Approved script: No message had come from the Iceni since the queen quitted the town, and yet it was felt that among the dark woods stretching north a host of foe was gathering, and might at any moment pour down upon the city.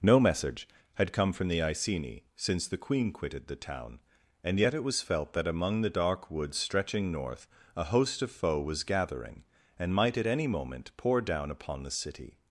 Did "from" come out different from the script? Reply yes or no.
no